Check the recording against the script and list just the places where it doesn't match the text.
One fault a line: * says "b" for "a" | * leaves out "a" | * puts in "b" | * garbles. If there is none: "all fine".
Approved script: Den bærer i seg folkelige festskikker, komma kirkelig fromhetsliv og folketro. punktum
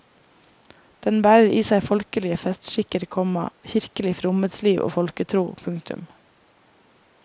all fine